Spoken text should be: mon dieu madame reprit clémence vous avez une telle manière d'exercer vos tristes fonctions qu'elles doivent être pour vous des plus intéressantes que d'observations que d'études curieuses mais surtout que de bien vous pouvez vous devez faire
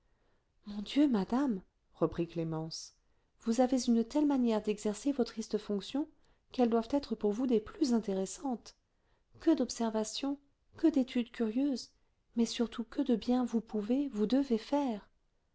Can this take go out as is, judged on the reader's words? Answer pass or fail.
pass